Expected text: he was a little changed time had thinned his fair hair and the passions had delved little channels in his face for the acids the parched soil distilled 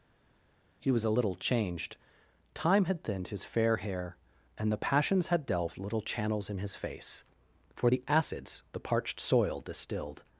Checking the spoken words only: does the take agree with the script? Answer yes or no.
yes